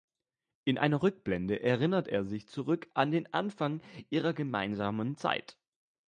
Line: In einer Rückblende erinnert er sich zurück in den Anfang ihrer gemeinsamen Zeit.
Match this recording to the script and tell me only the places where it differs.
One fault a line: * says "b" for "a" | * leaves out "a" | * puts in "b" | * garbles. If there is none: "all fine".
* says "an" for "in"